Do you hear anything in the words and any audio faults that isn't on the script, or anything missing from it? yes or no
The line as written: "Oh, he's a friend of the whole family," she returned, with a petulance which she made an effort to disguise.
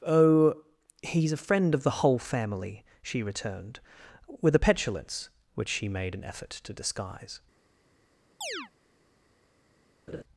yes